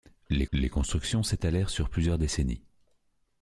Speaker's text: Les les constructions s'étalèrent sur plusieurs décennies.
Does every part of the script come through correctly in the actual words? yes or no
yes